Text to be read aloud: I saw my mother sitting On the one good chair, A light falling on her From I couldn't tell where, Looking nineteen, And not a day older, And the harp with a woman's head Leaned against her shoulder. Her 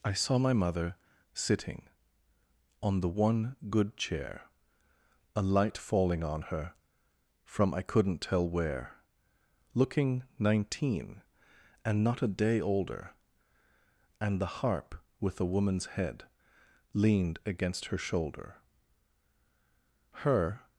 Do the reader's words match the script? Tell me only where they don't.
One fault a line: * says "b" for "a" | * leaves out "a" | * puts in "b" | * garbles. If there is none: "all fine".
all fine